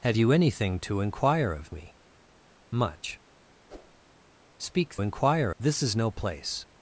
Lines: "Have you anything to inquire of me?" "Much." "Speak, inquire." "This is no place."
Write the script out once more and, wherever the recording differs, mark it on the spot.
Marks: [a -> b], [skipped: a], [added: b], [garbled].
"Have you anything to inquire of me?" "Much." "Speak, inquire." "This is no place."